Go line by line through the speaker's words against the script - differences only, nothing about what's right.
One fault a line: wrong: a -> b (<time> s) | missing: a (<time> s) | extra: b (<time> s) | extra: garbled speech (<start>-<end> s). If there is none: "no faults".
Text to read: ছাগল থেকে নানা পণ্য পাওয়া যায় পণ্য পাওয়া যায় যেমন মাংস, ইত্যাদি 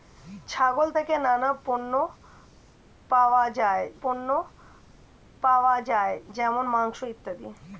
no faults